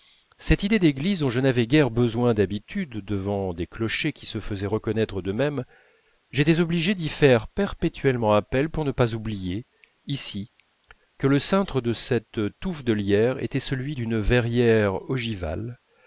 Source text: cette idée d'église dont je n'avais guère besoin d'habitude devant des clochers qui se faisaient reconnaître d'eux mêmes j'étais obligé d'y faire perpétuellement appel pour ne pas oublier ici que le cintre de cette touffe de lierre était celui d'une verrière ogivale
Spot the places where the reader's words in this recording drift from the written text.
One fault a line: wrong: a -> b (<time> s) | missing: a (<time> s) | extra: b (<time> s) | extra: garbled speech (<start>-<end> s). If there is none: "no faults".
no faults